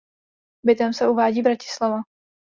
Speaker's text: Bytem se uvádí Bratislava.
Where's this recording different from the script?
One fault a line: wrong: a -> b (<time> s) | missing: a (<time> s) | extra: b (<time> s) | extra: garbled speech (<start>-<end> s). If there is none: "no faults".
no faults